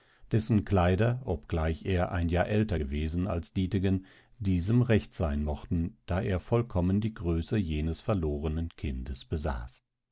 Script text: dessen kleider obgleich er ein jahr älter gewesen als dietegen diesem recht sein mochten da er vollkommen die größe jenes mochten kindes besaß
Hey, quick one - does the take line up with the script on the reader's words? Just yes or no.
no